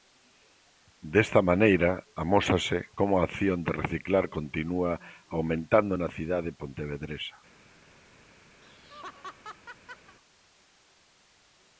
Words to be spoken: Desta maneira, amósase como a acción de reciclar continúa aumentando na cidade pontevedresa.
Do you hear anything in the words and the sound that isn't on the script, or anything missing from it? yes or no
yes